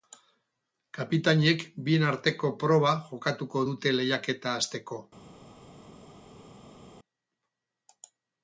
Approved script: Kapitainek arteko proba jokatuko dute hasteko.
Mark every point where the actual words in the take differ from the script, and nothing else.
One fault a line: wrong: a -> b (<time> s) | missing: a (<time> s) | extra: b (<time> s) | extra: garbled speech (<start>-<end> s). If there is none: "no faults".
extra: bien (1.9 s)
extra: lehiaketa (4.0 s)